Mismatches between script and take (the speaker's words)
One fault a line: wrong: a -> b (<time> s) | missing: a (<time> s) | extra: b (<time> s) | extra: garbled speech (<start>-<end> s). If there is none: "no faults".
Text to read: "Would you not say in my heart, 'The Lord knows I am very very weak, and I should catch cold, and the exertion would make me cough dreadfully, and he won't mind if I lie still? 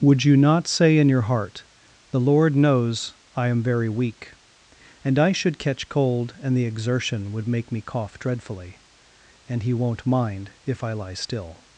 wrong: my -> your (1.1 s)
missing: very (3.9 s)